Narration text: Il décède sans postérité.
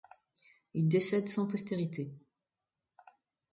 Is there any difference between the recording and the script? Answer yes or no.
no